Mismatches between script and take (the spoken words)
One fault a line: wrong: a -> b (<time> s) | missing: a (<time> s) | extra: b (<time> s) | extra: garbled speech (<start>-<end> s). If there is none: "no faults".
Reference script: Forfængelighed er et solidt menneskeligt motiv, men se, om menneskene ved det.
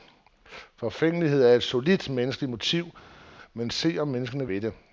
no faults